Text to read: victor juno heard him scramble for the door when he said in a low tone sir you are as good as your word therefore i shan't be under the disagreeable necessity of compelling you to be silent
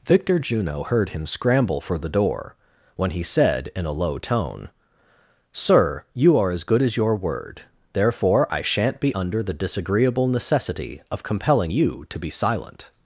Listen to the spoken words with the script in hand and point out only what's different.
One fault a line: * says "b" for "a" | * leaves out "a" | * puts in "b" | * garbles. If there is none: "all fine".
all fine